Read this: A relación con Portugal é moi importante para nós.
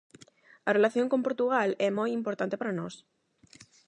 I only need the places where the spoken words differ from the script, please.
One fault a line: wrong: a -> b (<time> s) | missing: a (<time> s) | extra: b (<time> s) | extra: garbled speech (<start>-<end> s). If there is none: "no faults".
no faults